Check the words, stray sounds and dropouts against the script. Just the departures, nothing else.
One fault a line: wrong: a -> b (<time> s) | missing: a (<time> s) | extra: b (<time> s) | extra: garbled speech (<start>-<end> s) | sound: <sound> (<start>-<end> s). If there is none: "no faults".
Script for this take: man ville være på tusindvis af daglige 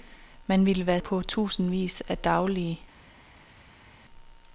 no faults